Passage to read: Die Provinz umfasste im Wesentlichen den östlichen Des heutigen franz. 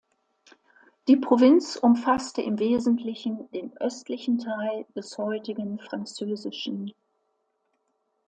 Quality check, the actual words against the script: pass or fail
fail